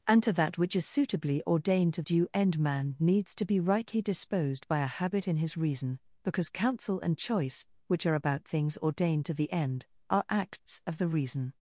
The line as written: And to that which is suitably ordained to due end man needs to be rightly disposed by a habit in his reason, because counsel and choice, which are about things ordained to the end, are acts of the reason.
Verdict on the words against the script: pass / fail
pass